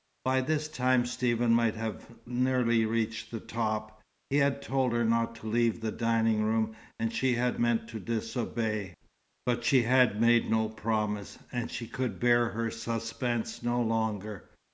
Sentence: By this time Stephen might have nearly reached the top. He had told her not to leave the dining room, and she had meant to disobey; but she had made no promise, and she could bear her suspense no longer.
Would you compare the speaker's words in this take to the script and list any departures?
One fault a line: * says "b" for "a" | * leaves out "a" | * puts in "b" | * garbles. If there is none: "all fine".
all fine